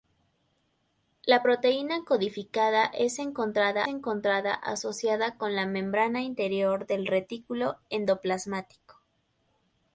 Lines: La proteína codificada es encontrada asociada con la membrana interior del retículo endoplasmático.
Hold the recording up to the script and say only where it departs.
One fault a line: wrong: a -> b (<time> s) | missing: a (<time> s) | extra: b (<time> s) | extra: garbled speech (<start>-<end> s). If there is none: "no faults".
extra: encontrada (3.9 s)